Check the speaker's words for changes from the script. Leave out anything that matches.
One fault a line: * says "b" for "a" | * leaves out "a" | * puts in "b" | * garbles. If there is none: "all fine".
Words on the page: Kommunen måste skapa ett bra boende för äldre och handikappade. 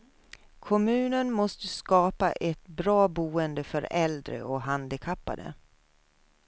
all fine